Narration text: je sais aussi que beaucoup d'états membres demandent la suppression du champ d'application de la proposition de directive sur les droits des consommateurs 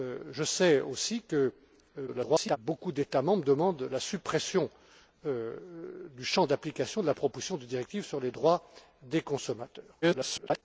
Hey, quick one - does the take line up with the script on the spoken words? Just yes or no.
no